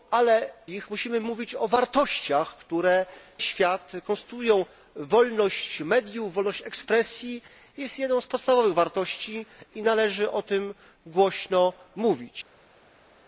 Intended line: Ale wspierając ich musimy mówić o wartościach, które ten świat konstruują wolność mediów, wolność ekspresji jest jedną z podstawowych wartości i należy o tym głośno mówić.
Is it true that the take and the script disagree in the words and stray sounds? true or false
true